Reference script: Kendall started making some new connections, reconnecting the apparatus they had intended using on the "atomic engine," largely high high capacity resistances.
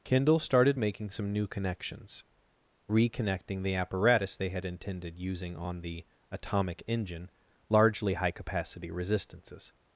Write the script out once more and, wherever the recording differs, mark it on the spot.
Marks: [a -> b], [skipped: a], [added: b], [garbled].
Kendall started making some new connections, reconnecting the apparatus they had intended using on the "atomic engine," largely high [skipped: high] capacity resistances.